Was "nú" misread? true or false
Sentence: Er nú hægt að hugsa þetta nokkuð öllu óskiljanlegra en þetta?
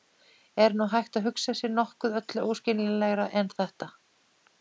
false